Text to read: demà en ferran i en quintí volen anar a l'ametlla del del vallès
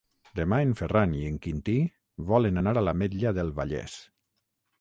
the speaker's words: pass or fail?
fail